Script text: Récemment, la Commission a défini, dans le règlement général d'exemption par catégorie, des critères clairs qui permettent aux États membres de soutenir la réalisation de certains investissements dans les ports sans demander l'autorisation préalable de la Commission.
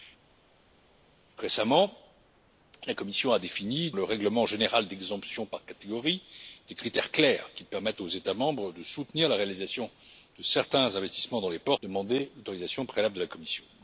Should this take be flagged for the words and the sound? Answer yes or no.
yes